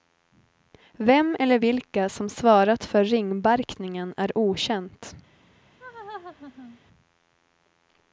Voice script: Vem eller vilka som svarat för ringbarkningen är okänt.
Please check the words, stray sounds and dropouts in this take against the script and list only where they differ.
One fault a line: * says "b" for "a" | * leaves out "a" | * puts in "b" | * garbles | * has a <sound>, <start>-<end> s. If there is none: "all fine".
* has a laugh, 5.8-6.8 s